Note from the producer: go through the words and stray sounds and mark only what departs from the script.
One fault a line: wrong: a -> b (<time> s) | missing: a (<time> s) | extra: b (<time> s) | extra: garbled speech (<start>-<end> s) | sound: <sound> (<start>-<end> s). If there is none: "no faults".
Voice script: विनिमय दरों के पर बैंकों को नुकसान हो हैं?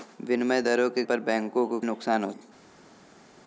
no faults